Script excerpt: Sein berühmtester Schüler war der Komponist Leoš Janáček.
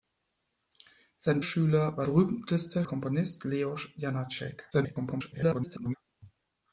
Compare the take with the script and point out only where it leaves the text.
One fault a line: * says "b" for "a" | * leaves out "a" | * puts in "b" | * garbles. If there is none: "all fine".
* leaves out "berühmtester"
* says "berühmtester" for "der"
* garbles